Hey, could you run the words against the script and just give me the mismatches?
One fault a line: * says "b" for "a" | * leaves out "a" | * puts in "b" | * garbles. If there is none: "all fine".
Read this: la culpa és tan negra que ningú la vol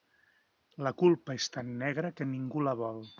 all fine